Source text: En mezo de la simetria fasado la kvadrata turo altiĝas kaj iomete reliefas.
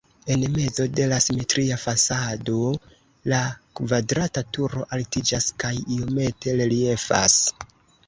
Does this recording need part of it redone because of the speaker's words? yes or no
no